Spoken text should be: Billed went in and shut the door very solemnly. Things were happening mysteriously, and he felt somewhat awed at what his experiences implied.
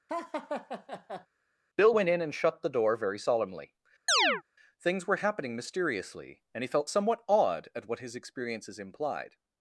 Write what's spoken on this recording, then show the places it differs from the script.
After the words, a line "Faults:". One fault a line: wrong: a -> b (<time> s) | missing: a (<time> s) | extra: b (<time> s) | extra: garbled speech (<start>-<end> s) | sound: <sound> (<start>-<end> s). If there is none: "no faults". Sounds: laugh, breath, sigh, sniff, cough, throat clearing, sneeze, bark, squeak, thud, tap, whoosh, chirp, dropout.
Bill went in and shut the door very solemnly. Things were happening mysteriously, and he felt somewhat awed at what his experiences implied.
Faults:
sound: laugh (0.1-1.3 s)
wrong: Billed -> Bill (1.8 s)
sound: chirp (4.1-4.4 s)